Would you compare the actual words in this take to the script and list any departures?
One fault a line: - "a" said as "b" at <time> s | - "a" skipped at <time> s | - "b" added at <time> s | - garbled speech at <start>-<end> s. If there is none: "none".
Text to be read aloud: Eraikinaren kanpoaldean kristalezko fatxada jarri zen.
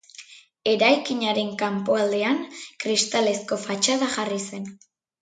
none